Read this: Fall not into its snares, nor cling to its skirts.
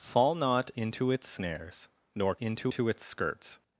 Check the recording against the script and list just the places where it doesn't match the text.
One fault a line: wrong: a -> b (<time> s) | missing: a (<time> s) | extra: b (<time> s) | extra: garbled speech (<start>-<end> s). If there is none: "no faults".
wrong: cling -> into (2.4 s)